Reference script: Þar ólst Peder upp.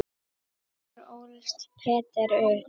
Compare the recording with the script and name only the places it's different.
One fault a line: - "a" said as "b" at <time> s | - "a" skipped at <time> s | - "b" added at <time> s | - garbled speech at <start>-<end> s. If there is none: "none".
none